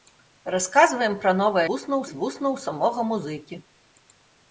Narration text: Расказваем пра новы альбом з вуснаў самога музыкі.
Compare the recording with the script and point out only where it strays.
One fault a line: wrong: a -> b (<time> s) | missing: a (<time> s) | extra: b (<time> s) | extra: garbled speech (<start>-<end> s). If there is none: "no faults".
wrong: альбом -> вуснаў (1.7 s)